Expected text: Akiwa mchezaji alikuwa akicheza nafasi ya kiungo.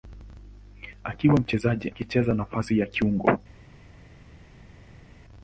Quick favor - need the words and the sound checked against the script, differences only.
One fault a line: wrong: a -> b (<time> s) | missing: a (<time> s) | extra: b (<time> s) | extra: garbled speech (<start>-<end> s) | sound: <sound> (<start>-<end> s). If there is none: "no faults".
missing: alikuwa (1.9 s)